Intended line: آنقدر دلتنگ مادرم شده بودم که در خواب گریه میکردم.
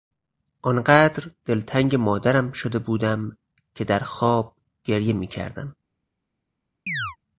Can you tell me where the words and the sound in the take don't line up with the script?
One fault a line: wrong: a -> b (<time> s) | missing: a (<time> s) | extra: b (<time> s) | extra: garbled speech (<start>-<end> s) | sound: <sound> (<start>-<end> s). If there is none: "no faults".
sound: chirp (6.9-7.2 s)